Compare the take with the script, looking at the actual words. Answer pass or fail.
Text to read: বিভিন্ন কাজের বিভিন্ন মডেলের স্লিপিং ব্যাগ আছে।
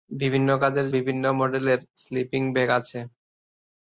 pass